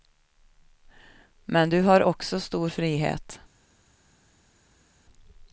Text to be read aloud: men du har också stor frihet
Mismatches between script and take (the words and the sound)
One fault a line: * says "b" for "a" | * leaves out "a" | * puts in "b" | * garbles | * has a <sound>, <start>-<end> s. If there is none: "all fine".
all fine